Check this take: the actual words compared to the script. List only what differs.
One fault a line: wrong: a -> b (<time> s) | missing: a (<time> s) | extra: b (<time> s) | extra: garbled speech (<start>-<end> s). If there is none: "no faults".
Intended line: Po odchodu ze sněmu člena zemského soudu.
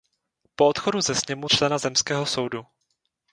no faults